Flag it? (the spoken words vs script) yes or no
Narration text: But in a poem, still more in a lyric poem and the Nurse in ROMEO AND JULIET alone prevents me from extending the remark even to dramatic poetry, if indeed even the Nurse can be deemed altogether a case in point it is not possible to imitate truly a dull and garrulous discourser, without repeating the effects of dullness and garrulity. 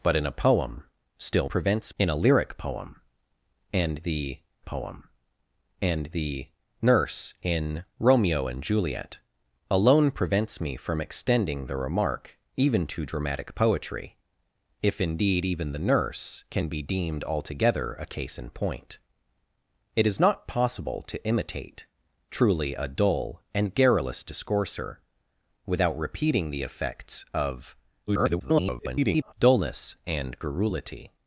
yes